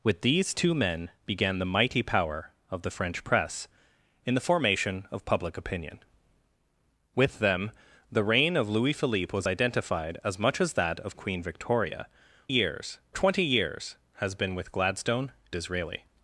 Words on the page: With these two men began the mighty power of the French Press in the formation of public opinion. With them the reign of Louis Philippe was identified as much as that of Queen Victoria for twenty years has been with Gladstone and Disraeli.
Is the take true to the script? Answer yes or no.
no